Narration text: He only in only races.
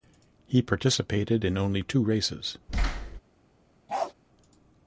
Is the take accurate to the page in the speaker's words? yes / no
no